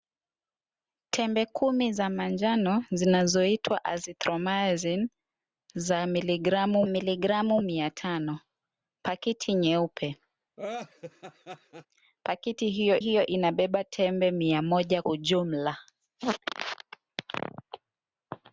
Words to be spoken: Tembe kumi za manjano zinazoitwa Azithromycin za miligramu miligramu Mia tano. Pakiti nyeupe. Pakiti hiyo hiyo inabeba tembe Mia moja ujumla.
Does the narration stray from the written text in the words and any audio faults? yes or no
yes